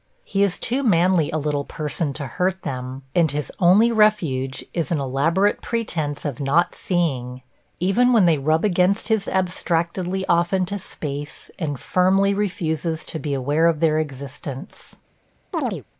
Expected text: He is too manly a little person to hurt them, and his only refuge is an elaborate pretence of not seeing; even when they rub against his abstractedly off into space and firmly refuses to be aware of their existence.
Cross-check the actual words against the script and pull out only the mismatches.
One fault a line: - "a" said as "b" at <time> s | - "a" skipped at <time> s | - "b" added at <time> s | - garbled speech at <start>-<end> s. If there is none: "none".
none